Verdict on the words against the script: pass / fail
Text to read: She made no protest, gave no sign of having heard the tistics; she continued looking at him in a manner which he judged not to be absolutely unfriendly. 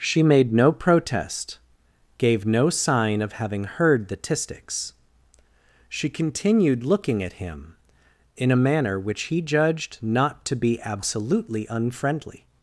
pass